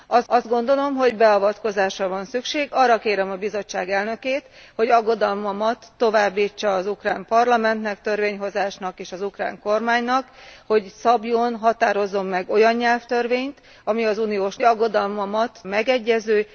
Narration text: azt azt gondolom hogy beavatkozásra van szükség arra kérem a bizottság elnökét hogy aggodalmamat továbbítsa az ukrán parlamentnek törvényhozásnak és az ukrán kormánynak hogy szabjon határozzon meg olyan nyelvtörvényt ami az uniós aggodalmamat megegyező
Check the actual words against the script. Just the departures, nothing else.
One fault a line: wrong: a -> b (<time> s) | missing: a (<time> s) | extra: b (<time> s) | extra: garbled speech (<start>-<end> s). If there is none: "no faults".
no faults